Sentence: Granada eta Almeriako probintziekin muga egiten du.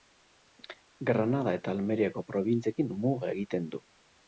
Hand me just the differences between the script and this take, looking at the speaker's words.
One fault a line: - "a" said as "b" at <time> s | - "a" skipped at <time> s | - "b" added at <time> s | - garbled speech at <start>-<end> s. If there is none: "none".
none